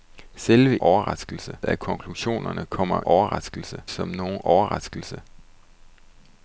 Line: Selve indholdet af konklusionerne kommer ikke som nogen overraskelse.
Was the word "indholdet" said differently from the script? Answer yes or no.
yes